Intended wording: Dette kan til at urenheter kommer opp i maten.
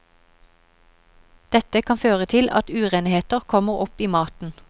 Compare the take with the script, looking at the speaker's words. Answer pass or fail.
fail